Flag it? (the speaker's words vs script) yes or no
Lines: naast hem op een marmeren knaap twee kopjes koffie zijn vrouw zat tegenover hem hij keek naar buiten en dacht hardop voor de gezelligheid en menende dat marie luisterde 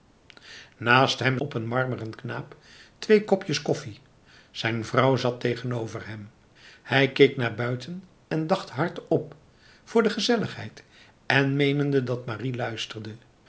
no